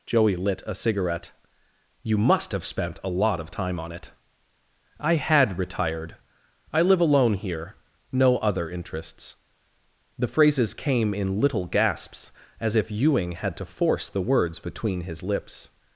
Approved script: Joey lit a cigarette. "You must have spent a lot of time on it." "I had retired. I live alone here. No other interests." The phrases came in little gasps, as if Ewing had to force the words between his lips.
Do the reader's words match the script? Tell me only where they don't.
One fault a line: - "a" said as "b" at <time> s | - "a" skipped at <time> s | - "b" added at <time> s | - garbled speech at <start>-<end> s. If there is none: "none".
none